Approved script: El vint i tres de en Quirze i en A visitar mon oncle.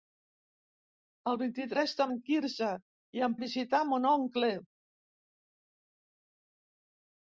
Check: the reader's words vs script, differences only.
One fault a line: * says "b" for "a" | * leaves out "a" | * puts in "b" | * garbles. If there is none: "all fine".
all fine